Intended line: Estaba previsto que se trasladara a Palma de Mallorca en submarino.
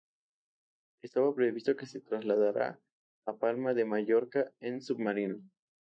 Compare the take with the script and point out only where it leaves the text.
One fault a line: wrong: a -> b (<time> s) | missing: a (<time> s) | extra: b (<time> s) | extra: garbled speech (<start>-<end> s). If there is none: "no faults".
no faults